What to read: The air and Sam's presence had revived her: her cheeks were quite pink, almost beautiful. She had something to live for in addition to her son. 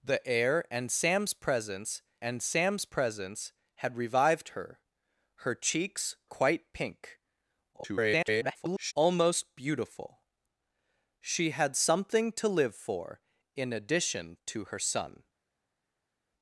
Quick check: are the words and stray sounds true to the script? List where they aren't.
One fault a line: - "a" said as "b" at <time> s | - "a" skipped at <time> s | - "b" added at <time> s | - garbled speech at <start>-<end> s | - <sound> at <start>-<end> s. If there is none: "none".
- "and Sam's presence" added at 2.2 s
- "were" skipped at 6.1 s
- garbled speech at 7.7-8.9 s